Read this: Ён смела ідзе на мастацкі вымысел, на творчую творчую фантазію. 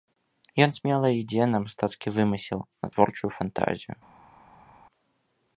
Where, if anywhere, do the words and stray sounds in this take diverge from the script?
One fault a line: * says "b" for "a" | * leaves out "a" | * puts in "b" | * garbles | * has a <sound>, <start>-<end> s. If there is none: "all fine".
* leaves out "творчую"